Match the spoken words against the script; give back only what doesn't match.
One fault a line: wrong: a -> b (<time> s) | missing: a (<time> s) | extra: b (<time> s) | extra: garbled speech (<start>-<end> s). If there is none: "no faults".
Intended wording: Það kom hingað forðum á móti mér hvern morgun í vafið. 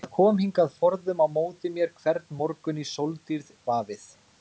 extra: sóldýrð (2.9 s)